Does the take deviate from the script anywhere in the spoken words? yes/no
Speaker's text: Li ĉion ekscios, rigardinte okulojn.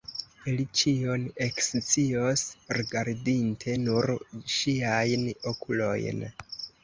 yes